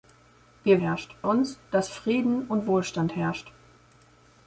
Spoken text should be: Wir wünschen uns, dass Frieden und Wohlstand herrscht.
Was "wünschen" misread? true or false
true